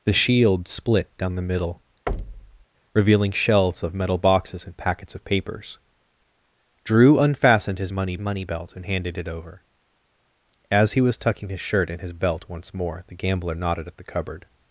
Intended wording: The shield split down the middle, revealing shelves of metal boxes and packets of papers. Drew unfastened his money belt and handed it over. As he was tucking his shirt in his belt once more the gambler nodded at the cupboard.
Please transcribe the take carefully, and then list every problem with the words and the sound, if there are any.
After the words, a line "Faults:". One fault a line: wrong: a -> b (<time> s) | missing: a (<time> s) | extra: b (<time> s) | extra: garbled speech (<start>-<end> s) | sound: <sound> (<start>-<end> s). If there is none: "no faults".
The shield split down the middle, revealing shelves of metal boxes and packets of papers. Drew unfastened his money money belt and handed it over. As he was tucking his shirt in his belt once more the gambler nodded at the cupboard.
Faults:
sound: thud (2.1-2.7 s)
extra: money (8.2 s)